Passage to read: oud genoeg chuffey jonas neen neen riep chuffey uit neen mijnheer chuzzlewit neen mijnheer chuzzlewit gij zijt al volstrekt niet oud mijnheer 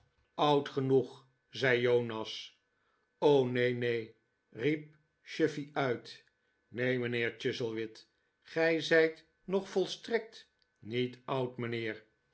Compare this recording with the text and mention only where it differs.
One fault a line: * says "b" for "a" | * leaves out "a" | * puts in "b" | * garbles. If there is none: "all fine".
* says "zei" for "chuffey"
* leaves out "neen mijnheer chuzzlewit"
* says "nog" for "al"